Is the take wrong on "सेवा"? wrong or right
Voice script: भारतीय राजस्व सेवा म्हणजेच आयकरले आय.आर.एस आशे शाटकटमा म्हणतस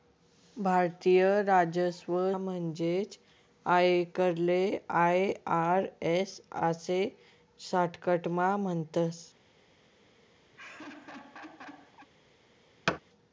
wrong